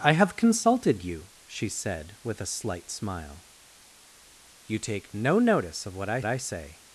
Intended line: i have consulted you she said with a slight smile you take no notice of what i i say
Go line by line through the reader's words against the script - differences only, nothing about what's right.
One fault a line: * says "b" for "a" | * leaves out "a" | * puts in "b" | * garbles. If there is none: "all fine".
all fine